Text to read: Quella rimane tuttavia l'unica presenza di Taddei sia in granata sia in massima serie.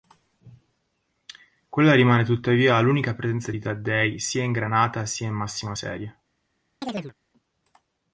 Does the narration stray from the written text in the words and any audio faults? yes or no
yes